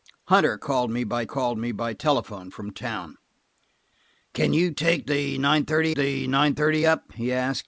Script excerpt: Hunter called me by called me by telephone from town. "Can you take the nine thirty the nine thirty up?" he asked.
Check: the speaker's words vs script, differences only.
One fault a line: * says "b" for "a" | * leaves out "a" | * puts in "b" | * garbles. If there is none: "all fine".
all fine